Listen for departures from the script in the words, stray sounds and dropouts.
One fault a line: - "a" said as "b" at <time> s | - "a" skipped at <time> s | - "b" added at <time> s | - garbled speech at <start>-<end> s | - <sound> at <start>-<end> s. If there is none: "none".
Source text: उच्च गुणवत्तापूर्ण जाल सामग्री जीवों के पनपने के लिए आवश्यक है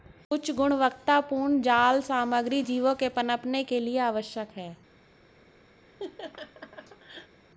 - laugh at 5.8-7.4 s